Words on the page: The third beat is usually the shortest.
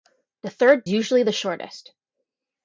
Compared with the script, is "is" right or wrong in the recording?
wrong